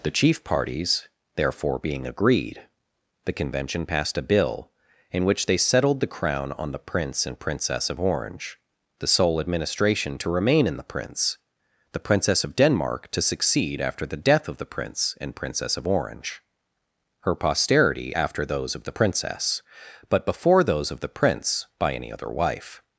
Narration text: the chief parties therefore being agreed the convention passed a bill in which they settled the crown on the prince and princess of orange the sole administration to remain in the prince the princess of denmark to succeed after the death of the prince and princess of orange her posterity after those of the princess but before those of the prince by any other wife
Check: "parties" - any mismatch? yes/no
no